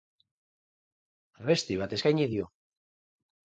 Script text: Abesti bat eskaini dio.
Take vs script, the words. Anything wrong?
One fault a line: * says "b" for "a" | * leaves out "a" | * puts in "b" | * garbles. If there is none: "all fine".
all fine